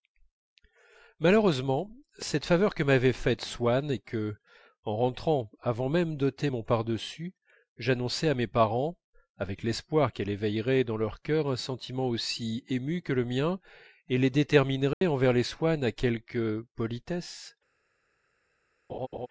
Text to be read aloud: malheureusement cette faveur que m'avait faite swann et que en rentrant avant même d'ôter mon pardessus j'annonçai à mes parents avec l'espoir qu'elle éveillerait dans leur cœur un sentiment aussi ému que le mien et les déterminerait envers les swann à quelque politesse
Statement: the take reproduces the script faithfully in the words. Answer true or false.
true